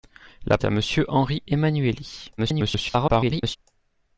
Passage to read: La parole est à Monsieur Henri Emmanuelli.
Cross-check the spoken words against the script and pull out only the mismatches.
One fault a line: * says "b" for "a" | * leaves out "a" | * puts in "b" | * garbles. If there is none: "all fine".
* leaves out "parole"
* garbles